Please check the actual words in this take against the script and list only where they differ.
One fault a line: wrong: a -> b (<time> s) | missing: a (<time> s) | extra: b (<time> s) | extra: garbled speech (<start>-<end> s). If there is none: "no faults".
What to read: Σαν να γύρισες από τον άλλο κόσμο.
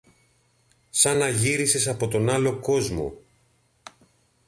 no faults